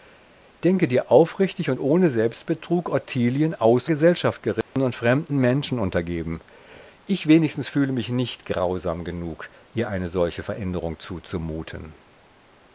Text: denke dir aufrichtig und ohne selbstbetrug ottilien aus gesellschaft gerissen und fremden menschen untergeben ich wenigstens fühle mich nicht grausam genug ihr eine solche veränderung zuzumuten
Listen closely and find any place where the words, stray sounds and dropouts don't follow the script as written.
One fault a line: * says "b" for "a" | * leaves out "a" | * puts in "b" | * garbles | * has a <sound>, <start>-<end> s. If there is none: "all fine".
* has a dropout, 4.6-4.8 s